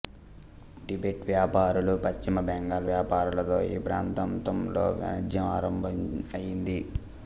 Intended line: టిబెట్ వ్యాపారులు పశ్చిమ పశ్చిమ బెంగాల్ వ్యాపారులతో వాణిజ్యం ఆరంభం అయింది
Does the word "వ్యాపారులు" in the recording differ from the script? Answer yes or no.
no